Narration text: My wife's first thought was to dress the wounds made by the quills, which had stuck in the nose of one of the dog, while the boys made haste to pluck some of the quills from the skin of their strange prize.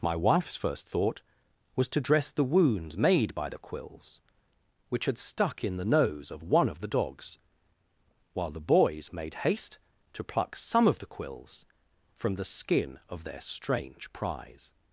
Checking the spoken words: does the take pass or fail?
fail